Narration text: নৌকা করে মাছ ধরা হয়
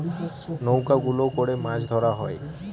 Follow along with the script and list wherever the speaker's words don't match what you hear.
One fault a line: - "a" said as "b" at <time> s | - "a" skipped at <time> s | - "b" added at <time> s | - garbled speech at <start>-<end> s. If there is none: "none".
- "গুলো" added at 1.0 s